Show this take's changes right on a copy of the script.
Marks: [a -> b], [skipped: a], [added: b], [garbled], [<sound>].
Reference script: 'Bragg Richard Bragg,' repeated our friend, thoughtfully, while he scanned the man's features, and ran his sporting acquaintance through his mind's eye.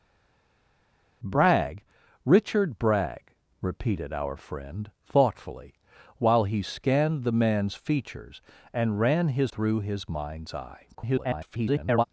'Bragg Richard Bragg,' repeated our friend, thoughtfully, while he scanned the man's features, and ran his [skipped: sporting acquaintance] through his mind's eye. [garbled]